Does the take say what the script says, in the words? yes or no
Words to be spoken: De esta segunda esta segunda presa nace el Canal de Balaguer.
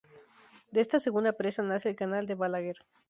no